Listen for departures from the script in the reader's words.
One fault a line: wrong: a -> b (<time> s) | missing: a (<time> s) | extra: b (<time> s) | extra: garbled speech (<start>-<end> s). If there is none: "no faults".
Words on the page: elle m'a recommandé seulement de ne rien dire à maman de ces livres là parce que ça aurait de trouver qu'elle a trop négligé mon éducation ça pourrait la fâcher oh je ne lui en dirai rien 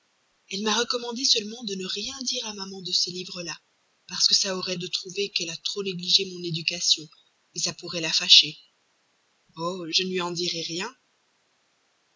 no faults